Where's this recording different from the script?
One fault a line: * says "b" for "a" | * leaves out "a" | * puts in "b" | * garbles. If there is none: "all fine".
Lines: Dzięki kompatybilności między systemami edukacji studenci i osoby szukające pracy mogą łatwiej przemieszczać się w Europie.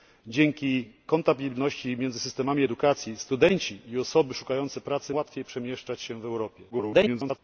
* leaves out "mogą"
* garbles